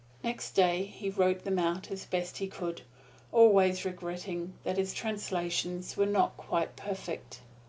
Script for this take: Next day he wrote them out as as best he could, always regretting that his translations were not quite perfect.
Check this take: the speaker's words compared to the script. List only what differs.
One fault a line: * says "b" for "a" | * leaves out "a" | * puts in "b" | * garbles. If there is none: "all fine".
* leaves out "as"